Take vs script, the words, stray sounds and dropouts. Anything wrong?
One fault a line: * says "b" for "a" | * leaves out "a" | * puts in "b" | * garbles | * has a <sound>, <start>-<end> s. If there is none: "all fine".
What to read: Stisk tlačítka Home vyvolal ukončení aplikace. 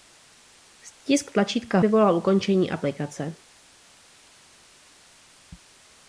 * leaves out "Home"